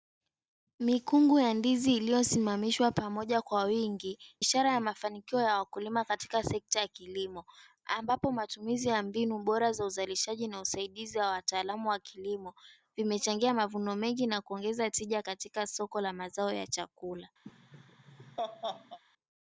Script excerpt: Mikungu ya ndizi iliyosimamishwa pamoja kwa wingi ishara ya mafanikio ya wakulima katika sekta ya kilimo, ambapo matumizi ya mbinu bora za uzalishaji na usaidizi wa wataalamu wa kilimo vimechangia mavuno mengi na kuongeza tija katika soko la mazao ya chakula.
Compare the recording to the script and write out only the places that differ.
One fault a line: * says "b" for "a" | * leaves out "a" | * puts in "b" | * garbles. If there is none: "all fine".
all fine